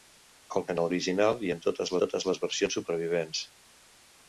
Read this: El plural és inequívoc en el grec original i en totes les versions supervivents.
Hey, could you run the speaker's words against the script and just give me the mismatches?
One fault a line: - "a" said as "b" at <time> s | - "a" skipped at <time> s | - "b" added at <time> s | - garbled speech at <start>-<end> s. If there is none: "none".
- "plural és inequívoc" skipped at 0.6 s
- "grec" skipped at 0.9 s
- "totes" added at 2.0 s